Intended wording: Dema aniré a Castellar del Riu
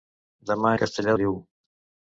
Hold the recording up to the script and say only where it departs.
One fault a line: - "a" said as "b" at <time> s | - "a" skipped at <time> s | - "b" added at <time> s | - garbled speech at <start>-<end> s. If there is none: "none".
- "aniré" skipped at 0.7 s
- "del" skipped at 1.2 s